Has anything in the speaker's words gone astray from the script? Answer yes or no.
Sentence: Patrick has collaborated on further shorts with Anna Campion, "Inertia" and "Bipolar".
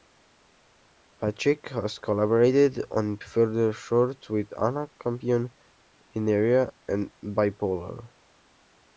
no